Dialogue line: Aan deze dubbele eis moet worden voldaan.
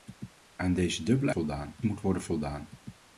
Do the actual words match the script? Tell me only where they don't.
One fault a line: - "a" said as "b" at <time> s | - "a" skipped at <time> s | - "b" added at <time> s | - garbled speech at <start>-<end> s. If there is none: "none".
- "eis" said as "voldaan" at 1.3 s